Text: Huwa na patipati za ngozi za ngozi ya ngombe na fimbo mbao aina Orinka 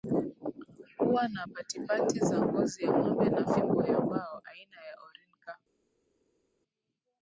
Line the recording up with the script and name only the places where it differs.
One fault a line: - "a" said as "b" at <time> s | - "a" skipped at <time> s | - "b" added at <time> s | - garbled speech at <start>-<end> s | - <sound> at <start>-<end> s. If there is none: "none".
- "za ngozi" skipped at 2.8 s
- "ya" added at 3.8 s
- "ya" added at 4.8 s